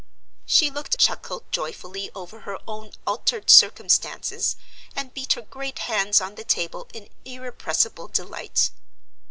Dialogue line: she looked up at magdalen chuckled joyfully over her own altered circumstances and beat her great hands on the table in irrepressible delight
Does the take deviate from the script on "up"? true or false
true